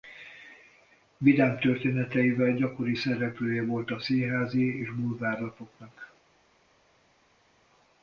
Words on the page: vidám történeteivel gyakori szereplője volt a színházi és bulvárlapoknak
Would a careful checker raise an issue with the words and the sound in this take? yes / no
no